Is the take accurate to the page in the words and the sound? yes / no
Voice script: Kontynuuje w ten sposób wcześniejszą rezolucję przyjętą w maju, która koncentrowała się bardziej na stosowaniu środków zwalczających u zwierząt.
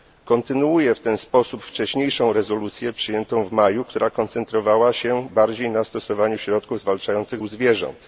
yes